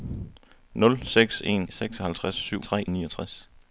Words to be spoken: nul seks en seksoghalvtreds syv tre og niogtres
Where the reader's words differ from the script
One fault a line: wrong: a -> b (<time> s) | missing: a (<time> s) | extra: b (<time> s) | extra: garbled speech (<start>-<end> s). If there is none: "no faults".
no faults